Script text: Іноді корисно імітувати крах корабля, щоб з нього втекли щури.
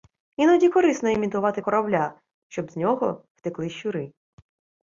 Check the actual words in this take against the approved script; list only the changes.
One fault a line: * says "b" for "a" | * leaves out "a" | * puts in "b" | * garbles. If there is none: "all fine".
* leaves out "крах"